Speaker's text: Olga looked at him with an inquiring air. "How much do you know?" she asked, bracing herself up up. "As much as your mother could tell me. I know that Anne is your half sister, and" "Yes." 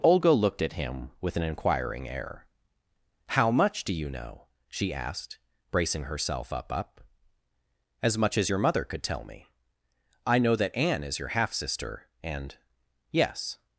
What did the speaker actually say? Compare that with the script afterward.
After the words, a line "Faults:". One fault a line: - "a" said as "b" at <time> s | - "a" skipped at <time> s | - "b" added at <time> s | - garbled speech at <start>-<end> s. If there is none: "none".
Olga looked at him with an inquiring air. "How much do you know?" she asked, bracing herself up up. "As much as your mother could tell me. I know that Anne is your half sister, and" "Yes."
Faults:
none